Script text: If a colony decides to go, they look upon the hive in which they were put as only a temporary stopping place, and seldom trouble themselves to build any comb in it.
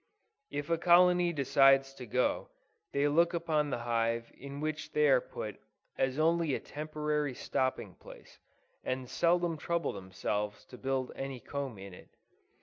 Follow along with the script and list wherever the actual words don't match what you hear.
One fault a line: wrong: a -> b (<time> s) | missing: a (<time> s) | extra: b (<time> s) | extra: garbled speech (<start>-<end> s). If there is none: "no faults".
wrong: were -> are (5.1 s)